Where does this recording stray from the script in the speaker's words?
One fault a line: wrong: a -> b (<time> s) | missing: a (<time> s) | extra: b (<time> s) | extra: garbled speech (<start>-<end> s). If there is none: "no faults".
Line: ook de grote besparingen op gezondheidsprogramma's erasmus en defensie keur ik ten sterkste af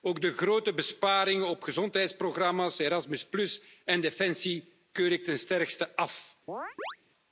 no faults